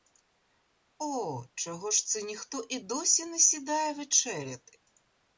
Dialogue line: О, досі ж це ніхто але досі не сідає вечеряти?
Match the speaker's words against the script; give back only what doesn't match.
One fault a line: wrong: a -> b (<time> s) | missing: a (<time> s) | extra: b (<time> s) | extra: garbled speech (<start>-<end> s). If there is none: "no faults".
wrong: досі -> чого (1.6 s)
wrong: але -> і (2.7 s)